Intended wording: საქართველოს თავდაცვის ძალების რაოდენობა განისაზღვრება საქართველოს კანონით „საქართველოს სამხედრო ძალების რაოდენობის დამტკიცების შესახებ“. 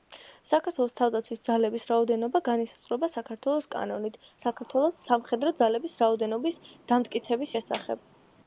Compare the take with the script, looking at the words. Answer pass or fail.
pass